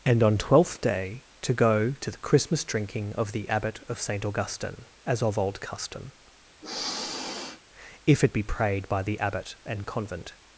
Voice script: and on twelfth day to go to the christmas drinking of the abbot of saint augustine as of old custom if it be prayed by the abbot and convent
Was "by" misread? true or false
false